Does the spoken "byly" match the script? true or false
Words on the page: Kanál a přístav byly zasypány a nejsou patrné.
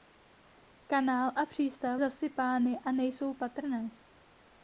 false